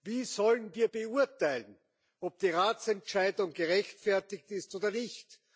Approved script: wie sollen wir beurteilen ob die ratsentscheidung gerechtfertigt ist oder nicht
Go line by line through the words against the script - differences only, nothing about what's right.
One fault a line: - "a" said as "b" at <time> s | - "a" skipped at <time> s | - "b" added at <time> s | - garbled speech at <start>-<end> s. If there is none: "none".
none